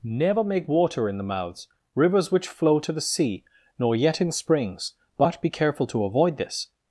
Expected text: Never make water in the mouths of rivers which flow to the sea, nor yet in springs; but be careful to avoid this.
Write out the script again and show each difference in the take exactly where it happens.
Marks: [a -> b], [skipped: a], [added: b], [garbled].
Never make water in the mouths [skipped: of] rivers which flow to the sea, nor yet in springs; but be careful to avoid this.